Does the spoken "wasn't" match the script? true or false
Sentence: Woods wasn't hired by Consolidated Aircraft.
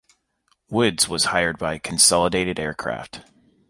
false